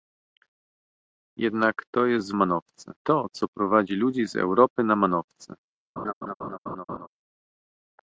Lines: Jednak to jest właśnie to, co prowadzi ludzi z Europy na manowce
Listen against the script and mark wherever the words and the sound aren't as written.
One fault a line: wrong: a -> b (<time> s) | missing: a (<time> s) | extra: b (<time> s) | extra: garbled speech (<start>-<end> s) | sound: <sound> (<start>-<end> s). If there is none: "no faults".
wrong: właśnie -> manowce (2.3 s)
sound: laugh (6.0-7.1 s)